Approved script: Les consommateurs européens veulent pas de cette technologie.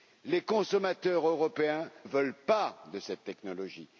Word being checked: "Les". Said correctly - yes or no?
yes